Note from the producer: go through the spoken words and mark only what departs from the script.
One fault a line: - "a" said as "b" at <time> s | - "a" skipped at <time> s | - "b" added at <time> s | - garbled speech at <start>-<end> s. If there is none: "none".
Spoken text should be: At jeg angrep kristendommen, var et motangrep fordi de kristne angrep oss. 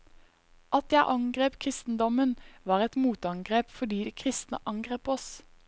none